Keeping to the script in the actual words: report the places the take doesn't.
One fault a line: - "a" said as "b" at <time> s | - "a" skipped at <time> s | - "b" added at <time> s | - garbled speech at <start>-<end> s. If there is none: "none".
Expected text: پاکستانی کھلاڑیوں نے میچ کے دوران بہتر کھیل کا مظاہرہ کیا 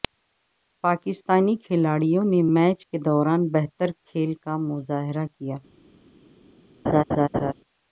none